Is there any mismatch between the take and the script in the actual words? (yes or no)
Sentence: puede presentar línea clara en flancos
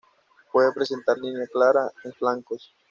no